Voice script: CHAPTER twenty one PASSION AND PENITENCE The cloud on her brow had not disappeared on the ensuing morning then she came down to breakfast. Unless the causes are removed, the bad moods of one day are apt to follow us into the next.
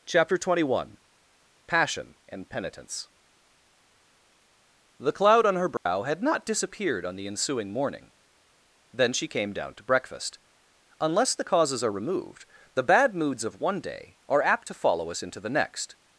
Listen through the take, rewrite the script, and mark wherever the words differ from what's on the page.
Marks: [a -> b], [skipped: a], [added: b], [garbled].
CHAPTER twenty one PASSION AND PENITENCE The cloud on her brow had not disappeared on the ensuing morning then she came down to breakfast. Unless the causes are removed, the bad moods of one day are apt to follow us into the next.